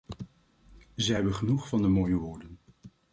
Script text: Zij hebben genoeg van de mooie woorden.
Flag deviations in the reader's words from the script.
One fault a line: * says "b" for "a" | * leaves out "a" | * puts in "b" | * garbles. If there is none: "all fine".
all fine